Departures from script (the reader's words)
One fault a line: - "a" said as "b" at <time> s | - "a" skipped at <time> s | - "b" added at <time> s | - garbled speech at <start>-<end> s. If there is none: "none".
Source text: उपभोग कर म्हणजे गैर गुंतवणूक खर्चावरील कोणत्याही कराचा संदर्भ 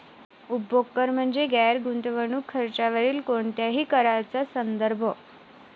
none